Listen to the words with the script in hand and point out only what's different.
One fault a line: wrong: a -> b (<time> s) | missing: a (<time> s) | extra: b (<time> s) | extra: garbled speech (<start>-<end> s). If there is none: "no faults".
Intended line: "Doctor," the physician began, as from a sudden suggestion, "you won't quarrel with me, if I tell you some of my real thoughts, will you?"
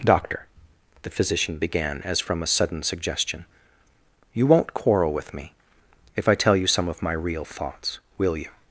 no faults